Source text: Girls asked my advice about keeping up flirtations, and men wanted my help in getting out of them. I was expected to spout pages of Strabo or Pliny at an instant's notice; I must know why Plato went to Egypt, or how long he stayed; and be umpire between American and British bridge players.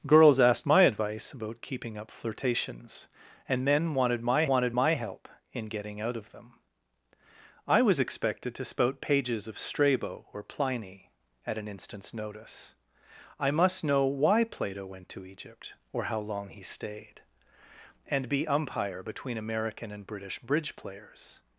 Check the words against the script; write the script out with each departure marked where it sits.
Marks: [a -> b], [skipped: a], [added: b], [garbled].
Girls asked my advice about keeping up flirtations, and men wanted my [added: wanted my] help in getting out of them. I was expected to spout pages of Strabo or Pliny at an instant's notice; I must know why Plato went to Egypt, or how long he stayed; and be umpire between American and British bridge players.